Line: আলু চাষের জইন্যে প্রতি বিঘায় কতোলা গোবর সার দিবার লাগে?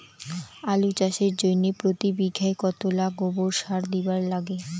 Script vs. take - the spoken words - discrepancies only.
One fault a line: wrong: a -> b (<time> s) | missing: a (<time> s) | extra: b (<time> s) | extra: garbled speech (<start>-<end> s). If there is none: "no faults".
no faults